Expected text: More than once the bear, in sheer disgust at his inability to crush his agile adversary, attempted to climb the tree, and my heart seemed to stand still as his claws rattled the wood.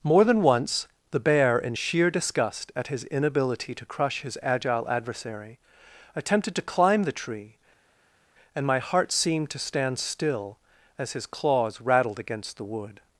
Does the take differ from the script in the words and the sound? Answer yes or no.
yes